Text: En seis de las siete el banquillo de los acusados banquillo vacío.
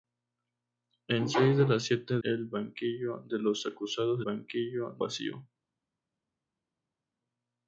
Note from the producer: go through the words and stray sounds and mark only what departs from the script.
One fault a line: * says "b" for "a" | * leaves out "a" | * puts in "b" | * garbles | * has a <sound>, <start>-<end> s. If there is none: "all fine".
all fine